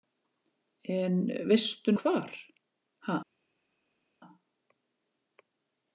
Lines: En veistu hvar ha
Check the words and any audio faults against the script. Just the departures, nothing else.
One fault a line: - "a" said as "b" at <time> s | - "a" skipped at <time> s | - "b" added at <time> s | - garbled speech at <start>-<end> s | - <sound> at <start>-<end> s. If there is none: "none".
none